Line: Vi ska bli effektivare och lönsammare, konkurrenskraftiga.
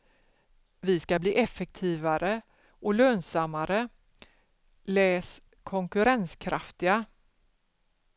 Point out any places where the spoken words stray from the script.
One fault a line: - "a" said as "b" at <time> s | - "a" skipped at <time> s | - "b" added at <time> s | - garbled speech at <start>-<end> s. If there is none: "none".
- "läs" added at 4.8 s